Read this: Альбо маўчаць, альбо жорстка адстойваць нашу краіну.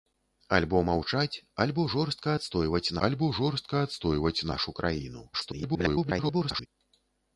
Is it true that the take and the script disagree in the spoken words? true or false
true